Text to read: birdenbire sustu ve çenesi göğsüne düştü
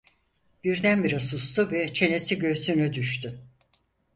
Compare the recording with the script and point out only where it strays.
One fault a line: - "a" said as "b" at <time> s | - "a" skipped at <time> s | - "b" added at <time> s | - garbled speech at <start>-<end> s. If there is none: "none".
none